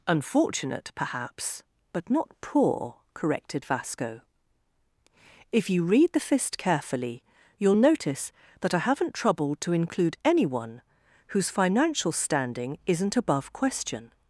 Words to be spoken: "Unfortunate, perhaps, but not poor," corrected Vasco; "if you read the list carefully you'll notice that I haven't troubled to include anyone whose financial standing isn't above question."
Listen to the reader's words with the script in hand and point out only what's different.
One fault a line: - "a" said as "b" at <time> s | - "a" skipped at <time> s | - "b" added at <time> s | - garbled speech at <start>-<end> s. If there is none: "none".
- "list" said as "fist" at 6.2 s